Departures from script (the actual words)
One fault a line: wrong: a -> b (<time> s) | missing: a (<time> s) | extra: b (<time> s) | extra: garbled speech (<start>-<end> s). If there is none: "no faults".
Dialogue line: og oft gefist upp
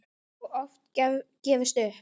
no faults